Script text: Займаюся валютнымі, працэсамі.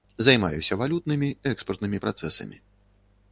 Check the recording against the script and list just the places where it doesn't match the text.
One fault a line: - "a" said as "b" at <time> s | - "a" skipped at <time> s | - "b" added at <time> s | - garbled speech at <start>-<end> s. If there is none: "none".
- "экспартнымі" added at 1.5 s